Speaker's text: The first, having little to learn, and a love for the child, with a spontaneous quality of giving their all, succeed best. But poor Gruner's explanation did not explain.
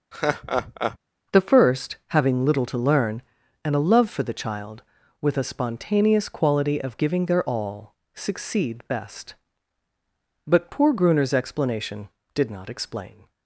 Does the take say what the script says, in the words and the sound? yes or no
no